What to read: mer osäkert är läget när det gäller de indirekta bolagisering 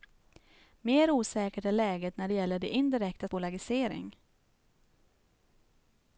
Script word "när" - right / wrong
right